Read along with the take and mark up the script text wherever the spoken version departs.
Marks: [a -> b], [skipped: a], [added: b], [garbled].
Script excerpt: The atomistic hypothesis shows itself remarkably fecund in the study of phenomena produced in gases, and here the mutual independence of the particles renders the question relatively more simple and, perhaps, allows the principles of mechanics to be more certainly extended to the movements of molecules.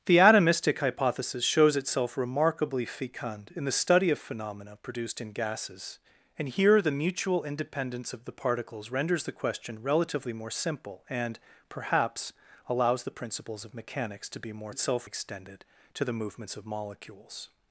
The atomistic hypothesis shows itself remarkably fecund in the study of phenomena produced in gases, and here the mutual independence of the particles renders the question relatively more simple and, perhaps, allows the principles of mechanics to be more [certainly -> itself] extended to the movements of molecules.